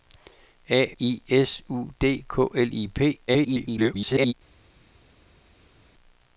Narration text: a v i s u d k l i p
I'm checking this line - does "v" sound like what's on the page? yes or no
no